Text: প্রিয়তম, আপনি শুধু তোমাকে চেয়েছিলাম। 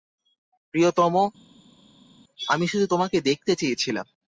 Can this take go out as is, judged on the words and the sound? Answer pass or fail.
fail